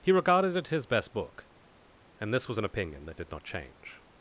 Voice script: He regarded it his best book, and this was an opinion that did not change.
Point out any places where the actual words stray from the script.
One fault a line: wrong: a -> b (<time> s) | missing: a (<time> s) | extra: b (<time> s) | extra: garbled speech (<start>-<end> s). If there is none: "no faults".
no faults